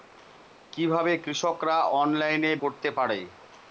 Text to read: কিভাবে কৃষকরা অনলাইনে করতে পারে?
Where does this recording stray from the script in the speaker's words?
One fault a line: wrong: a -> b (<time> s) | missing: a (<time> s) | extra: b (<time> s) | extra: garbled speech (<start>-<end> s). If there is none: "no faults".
no faults